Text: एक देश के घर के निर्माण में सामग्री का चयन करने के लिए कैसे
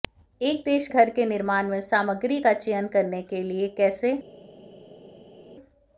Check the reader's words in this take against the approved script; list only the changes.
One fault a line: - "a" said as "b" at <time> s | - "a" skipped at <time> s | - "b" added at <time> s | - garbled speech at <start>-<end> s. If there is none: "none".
- "के" skipped at 0.9 s